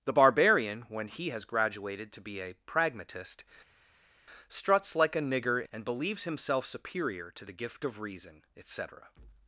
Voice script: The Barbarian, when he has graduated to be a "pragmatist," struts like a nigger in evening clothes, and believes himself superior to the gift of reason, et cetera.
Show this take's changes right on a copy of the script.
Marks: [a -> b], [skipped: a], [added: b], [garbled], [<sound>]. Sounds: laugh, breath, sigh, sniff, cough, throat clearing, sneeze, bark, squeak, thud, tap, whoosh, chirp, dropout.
The Barbarian, when he has graduated to be a "pragmatist," struts like a nigger [skipped: in evening clothes,] and believes himself superior to the gift of reason, et cetera.